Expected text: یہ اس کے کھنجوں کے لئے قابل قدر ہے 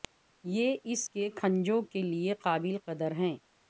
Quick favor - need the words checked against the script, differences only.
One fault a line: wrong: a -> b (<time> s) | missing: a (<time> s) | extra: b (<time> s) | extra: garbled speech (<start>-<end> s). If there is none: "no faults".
no faults